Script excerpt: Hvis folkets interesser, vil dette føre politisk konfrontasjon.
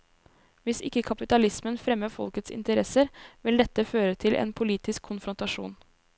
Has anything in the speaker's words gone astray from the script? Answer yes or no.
yes